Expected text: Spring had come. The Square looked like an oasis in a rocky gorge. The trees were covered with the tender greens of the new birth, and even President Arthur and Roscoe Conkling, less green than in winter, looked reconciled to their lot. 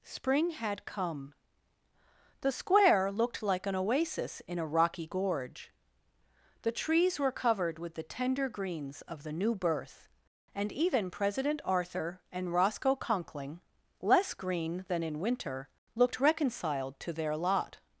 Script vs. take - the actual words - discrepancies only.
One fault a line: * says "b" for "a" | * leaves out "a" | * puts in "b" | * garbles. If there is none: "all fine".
all fine